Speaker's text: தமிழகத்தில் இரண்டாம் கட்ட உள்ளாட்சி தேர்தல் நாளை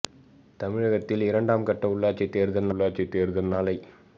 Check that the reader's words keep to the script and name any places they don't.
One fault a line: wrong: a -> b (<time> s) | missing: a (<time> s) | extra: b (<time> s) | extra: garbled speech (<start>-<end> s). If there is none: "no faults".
extra: உள்ளாட்சி தேர்தல் (2.7 s)